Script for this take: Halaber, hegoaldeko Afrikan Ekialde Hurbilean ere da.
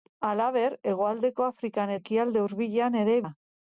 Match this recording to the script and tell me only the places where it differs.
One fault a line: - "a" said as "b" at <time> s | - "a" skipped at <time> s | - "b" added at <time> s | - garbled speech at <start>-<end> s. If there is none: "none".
none